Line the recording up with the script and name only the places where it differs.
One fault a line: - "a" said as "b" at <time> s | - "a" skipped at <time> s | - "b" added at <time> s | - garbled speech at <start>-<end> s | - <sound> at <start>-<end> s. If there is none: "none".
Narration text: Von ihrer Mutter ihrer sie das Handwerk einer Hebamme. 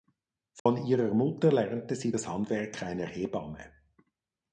- dropout at 0.6-0.7 s
- "ihrer" said as "lernte" at 1.5 s